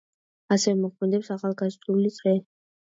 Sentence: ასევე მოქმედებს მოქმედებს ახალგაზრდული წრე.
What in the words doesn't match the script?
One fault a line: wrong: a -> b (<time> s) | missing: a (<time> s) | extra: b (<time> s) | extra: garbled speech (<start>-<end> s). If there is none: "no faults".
missing: მოქმედებს (1.3 s)